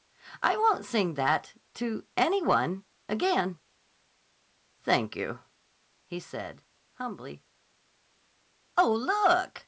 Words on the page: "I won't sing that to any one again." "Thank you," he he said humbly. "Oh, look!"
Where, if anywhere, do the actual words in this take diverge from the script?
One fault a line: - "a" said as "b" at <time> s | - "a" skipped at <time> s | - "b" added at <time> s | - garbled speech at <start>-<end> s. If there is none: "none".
- "he" skipped at 6.2 s